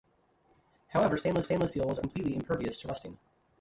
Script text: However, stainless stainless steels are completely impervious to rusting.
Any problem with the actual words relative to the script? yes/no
no